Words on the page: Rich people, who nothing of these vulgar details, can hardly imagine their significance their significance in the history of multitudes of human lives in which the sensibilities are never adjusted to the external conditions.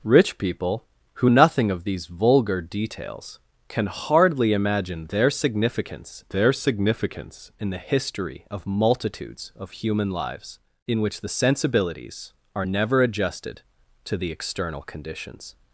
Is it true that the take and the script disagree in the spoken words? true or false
false